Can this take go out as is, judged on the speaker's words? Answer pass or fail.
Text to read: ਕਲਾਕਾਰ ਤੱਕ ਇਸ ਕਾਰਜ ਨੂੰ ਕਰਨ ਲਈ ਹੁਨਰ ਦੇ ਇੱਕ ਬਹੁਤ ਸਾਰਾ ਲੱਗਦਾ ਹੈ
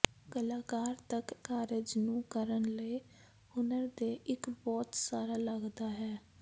fail